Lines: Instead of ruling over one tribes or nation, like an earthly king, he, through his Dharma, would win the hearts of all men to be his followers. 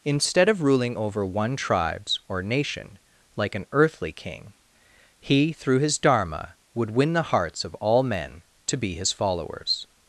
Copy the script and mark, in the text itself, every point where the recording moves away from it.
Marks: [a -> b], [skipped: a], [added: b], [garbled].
Instead of ruling over one tribes or nation, like an earthly king, he, through his Dharma, would win the hearts of all men to be his followers.